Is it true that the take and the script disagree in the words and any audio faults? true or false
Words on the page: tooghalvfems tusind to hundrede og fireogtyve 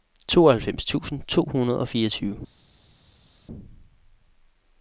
false